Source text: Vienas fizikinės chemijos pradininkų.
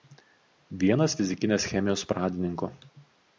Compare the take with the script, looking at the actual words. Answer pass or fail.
pass